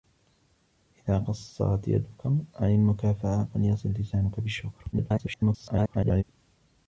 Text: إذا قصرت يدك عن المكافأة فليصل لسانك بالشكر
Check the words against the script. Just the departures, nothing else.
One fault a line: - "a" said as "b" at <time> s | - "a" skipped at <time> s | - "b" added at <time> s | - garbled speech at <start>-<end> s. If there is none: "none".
- garbled speech at 4.9-6.2 s